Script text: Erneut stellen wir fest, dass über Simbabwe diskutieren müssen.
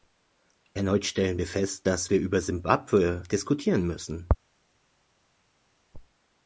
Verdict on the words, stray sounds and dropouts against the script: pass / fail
fail